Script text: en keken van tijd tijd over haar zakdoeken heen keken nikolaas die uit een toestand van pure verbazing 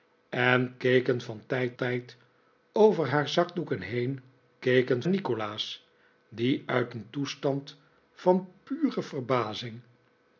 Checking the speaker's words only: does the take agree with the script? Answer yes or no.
yes